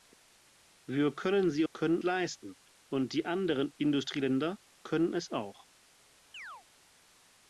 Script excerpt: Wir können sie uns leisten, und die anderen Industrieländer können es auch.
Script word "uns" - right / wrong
wrong